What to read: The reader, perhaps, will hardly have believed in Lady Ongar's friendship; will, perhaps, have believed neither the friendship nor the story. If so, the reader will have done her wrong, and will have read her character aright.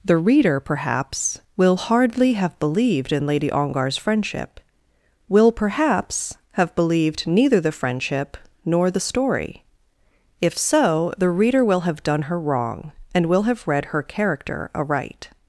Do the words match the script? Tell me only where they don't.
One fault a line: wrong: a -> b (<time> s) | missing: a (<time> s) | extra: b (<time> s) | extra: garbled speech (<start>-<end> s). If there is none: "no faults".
no faults